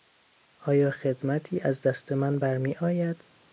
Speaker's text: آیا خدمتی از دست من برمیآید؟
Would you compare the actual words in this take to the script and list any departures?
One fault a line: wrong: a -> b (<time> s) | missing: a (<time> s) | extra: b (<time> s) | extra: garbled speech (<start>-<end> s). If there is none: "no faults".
no faults